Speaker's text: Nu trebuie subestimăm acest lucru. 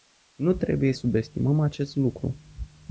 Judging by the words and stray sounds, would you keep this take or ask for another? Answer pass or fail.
pass